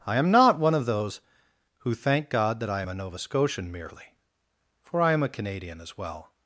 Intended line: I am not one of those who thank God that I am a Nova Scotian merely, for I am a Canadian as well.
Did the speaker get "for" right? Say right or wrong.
right